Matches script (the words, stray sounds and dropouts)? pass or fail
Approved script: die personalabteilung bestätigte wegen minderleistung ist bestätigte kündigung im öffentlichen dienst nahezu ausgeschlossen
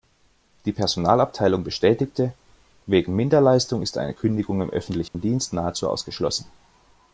fail